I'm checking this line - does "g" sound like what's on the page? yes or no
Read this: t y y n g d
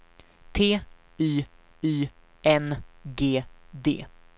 yes